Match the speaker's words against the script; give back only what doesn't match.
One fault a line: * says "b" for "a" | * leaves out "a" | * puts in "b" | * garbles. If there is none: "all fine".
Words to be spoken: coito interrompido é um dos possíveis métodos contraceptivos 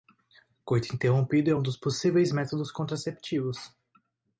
all fine